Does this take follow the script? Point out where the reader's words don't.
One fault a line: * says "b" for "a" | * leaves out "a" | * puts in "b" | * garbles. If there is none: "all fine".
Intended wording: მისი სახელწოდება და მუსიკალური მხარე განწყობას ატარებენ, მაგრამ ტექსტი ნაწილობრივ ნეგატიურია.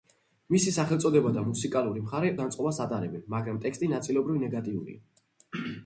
all fine